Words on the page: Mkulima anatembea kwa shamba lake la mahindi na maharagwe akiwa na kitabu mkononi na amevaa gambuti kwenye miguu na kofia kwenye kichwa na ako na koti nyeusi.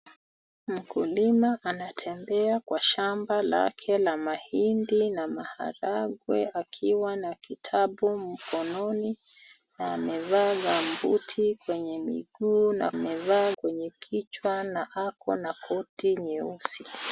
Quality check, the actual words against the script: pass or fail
fail